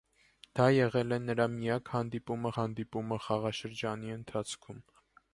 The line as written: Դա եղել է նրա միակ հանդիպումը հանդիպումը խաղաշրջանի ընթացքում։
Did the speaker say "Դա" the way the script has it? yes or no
yes